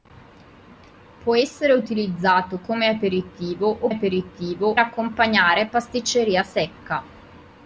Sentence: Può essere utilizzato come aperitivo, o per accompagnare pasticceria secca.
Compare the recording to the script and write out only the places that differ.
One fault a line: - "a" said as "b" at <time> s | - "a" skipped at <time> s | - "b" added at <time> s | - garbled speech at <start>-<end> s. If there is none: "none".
- "per" said as "aperitivo" at 3.9 s